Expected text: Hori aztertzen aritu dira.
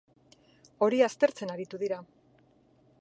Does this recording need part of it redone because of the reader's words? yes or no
no